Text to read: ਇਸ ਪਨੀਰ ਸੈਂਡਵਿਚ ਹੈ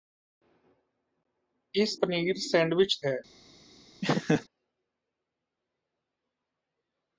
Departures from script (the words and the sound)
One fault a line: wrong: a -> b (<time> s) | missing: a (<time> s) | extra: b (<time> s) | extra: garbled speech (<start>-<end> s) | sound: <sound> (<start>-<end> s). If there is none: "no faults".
sound: laugh (4.0-4.5 s)